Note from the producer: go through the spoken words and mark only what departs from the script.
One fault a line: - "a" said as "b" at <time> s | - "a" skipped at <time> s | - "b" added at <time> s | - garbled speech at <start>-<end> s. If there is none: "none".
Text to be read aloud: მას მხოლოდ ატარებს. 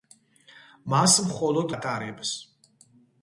none